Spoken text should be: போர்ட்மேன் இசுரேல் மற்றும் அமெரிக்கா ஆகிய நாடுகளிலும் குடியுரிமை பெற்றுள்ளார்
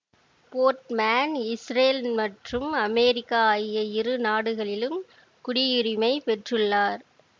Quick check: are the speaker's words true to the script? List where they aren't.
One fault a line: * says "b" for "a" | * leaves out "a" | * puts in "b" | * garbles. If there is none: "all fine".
* puts in "இரு"